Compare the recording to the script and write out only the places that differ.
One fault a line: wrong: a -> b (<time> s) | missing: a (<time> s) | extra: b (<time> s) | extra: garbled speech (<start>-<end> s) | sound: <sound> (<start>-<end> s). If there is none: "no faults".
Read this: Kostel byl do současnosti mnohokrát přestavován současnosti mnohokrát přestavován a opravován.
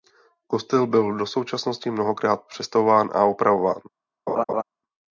missing: současnosti mnohokrát přestavován (3.1 s)
sound: laugh (4.3-4.6 s)